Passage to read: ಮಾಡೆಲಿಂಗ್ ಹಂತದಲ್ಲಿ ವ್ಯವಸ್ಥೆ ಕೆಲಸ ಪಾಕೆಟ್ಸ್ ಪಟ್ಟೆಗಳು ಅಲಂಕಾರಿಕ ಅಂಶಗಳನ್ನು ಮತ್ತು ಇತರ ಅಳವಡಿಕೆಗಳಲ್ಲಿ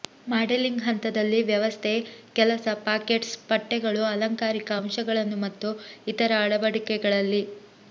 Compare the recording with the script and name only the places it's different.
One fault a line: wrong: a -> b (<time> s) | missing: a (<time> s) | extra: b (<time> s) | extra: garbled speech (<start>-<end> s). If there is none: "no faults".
no faults